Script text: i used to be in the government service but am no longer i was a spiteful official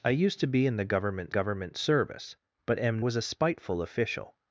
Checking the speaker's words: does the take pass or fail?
fail